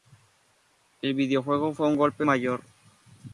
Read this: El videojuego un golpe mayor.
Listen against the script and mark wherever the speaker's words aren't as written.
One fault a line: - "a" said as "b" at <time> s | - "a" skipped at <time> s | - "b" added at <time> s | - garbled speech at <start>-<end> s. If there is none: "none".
- "fue" added at 1.7 s